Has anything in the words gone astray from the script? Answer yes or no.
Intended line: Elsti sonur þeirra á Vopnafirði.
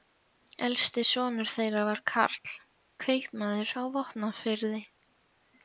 yes